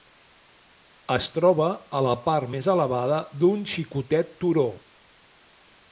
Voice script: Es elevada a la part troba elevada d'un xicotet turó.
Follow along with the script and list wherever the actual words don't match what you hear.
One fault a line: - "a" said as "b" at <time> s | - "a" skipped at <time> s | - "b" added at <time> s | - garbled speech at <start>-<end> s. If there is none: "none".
- "elevada" said as "troba" at 1.4 s
- "troba" said as "més" at 2.5 s